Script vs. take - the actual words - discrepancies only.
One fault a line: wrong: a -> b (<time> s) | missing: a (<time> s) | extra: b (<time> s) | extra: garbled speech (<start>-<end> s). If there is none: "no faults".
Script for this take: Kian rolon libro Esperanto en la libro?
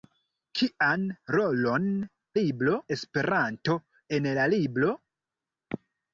no faults